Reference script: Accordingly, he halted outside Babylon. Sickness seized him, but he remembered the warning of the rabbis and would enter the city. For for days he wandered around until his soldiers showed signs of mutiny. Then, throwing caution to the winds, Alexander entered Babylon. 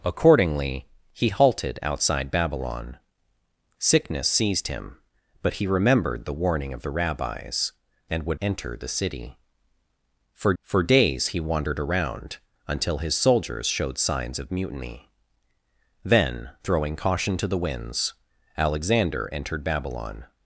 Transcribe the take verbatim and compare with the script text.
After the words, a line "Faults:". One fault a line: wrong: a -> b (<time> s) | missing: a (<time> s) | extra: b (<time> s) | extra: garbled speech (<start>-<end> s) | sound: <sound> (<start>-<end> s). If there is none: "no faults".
Accordingly, he halted outside Babylon. Sickness seized him, but he remembered the warning of the rabbis and would enter the city. For for days he wandered around until his soldiers showed signs of mutiny. Then, throwing caution to the winds, Alexander entered Babylon.
Faults:
no faults